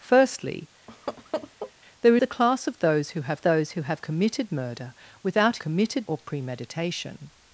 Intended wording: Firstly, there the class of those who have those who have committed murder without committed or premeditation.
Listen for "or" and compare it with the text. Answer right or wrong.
right